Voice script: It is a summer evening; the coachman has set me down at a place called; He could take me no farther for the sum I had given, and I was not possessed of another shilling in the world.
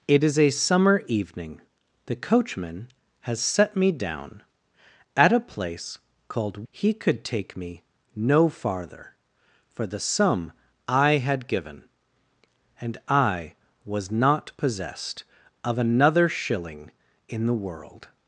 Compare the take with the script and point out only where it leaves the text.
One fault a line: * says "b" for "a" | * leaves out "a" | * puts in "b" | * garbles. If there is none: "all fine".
all fine